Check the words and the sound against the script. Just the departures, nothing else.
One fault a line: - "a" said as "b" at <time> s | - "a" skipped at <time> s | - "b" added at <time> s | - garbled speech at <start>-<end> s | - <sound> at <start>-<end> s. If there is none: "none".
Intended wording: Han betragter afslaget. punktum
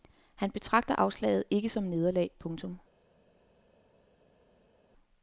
- "ikke som nederlag" added at 1.5 s